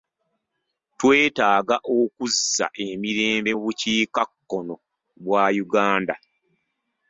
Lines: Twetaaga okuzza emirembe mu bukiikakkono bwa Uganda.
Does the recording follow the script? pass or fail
pass